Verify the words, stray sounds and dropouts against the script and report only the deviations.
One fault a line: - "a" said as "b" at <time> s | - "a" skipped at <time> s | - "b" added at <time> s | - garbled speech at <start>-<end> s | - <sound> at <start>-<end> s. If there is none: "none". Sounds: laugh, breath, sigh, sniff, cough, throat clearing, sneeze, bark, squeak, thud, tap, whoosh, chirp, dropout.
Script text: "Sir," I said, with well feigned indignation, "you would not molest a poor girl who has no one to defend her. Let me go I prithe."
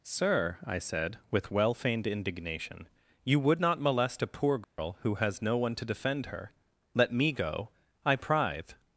- dropout at 4.6-4.8 s